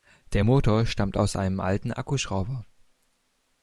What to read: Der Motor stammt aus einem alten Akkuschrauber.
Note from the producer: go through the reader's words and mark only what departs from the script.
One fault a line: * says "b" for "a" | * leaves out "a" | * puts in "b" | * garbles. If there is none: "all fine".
all fine